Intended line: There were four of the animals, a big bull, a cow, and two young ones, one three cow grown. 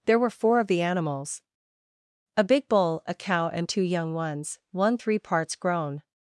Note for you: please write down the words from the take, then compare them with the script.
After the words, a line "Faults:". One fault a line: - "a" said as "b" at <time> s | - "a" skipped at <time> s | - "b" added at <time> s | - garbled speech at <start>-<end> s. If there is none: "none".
There were four of the animals, a big bull, a cow, and two young ones, one three parts grown.
Faults:
- "cow" said as "parts" at 5.2 s